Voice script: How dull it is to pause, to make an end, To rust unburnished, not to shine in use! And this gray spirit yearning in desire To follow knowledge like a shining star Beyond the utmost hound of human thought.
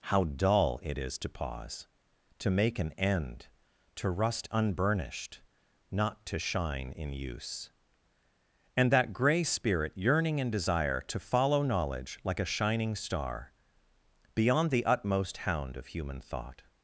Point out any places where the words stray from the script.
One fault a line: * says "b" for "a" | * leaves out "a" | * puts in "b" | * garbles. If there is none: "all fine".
* says "that" for "this"